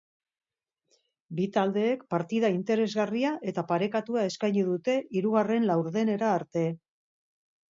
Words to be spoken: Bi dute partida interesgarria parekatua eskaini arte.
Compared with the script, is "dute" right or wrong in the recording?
wrong